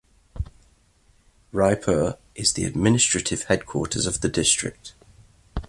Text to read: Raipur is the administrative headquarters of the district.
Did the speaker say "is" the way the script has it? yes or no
yes